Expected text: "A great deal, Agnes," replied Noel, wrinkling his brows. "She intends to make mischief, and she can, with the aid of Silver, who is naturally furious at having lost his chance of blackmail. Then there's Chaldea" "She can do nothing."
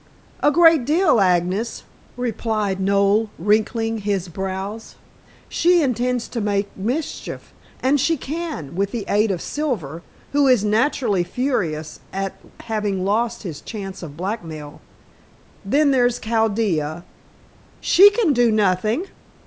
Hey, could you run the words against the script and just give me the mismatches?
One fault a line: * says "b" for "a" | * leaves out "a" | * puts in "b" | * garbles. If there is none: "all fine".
all fine